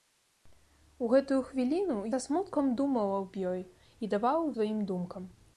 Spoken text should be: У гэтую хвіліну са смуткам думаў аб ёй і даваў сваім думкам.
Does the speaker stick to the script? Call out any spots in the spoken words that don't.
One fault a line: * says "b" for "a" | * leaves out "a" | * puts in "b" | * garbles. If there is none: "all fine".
all fine